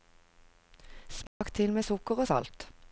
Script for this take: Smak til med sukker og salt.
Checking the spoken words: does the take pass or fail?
pass